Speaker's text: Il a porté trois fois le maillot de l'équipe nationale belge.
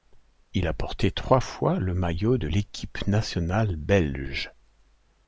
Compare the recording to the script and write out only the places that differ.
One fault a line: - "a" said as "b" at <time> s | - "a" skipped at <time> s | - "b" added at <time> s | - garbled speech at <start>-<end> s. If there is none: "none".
none